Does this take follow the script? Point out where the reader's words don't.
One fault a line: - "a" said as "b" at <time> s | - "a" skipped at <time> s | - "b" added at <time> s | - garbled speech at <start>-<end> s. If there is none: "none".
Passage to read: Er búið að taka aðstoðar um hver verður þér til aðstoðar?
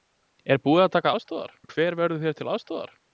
none